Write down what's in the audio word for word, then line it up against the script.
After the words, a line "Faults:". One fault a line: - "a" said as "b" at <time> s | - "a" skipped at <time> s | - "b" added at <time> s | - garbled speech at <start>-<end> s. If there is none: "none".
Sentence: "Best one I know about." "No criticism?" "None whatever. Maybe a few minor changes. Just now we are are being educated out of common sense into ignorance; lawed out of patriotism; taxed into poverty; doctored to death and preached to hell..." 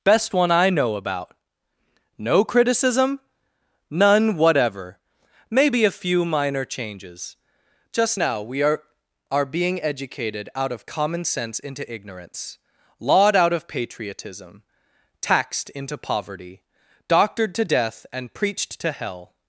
"Best one I know about." "No criticism?" "None whatever. Maybe a few minor changes. Just now we are are being educated out of common sense into ignorance; lawed out of patriotism; taxed into poverty; doctored to death and preached to hell..."
Faults:
none